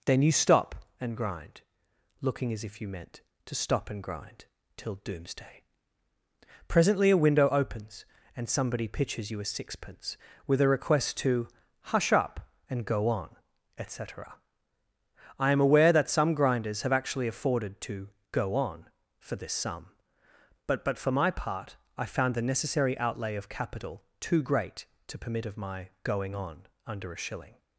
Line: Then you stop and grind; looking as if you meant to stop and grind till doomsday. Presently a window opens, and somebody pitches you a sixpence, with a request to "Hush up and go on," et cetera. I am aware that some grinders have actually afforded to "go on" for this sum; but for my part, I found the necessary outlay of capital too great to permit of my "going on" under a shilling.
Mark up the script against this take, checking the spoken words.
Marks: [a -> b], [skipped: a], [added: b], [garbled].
Then you stop and grind; looking as if you meant to stop and grind till doomsday. Presently a window opens, and somebody pitches you a sixpence, with a request to "Hush up and go on," et cetera. I am aware that some grinders have actually afforded to "go on" for this sum; but [added: but] for my part, I found the necessary outlay of capital too great to permit of my "going on" under a shilling.